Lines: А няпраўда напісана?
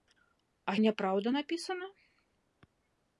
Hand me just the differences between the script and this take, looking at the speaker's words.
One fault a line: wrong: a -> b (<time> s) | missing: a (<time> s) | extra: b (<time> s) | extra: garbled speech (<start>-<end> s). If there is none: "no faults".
no faults